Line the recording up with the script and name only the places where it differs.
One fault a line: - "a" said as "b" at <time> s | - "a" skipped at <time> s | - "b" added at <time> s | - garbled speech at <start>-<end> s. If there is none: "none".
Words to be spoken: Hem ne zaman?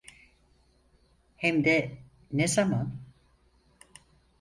- "de" added at 1.6 s